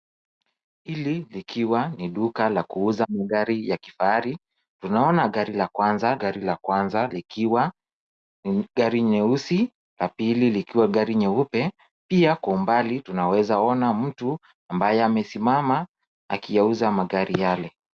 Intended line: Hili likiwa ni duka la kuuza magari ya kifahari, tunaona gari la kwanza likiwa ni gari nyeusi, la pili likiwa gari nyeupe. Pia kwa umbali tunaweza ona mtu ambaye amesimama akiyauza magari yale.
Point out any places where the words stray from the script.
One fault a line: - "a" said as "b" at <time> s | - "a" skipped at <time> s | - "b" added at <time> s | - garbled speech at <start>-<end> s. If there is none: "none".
- "gari la kwanza" added at 6.2 s